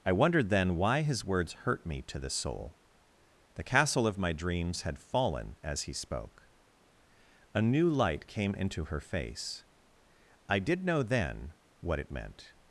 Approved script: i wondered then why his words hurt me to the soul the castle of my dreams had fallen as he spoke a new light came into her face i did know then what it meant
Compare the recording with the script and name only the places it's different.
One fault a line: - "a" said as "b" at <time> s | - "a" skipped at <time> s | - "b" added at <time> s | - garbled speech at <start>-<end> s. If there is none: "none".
none